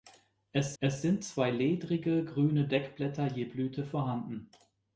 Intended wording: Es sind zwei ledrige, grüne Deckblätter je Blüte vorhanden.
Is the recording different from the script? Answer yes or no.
yes